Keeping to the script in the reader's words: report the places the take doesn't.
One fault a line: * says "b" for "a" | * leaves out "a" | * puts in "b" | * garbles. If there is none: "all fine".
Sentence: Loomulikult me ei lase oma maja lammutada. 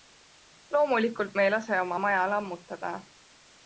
all fine